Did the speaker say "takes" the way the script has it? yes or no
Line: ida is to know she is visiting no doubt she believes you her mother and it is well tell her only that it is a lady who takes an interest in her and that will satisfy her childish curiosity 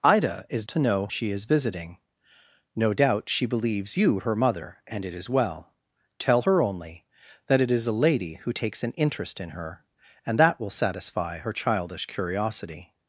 yes